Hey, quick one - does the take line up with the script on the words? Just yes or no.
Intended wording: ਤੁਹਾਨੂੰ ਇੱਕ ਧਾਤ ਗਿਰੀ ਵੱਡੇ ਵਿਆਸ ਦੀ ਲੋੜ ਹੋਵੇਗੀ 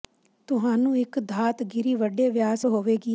no